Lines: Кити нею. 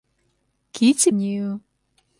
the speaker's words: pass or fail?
pass